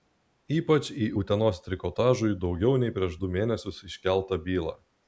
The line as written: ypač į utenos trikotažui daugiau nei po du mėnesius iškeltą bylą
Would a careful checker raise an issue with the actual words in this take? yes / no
yes